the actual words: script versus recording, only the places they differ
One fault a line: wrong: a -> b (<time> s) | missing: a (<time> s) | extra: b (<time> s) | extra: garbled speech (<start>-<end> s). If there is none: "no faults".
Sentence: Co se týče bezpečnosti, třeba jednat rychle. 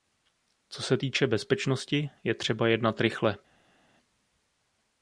extra: je (2.2 s)